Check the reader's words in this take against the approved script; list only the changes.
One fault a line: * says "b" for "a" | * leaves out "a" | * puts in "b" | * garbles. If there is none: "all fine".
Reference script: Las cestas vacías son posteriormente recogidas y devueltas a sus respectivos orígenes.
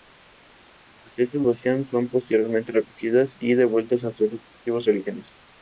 all fine